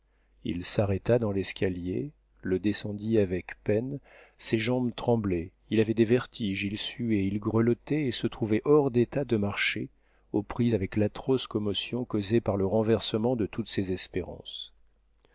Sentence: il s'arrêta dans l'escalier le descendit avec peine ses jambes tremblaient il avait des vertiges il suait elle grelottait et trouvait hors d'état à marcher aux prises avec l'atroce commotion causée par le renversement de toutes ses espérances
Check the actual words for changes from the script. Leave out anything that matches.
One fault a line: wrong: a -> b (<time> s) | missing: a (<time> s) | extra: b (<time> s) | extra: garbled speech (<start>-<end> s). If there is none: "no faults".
wrong: elle -> il (7.3 s)
extra: se (8.1 s)
wrong: à -> de (9.2 s)